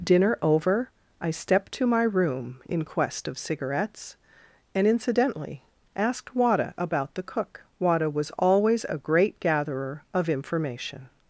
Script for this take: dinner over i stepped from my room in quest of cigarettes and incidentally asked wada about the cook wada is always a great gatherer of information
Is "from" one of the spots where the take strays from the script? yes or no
yes